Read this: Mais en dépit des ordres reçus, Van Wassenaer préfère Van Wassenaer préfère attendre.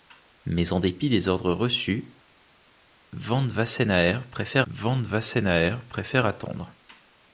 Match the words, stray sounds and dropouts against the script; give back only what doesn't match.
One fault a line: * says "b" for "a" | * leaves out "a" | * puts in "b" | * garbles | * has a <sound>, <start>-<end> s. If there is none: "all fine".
all fine